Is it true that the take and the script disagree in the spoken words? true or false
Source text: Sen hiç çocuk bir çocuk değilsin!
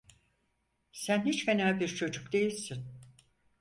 true